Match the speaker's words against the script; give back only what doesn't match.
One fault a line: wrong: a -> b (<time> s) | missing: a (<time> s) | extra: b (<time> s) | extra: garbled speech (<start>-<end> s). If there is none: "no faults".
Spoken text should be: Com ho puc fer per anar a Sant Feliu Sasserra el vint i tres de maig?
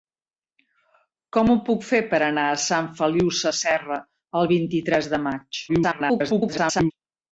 extra: garbled speech (5.7-6.9 s)